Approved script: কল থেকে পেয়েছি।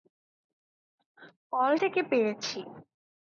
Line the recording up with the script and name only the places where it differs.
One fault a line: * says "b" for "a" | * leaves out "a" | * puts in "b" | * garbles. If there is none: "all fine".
all fine